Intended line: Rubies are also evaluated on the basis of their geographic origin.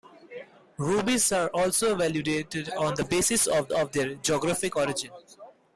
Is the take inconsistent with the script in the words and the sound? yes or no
yes